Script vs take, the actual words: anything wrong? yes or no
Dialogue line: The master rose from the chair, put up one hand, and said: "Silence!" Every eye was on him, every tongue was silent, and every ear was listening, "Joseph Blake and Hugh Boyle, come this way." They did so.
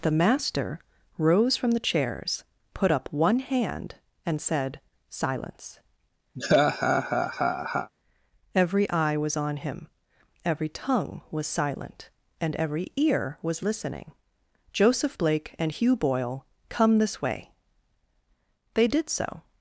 yes